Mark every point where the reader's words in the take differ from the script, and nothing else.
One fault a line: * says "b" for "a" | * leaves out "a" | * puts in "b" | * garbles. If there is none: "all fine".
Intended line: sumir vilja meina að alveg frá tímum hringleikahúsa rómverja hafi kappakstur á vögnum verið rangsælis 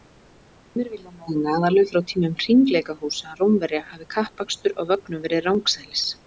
all fine